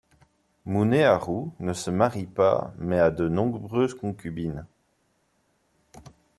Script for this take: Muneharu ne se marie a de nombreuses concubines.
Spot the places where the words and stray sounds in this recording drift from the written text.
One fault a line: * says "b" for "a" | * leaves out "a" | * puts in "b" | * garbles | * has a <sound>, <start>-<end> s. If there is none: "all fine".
* puts in "pas mais"